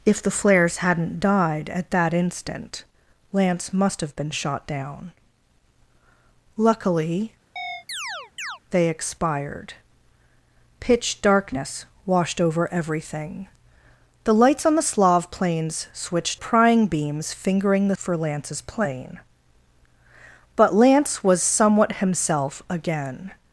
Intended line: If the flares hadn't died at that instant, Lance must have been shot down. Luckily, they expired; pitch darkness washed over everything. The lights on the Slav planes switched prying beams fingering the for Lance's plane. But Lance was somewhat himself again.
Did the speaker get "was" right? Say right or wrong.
right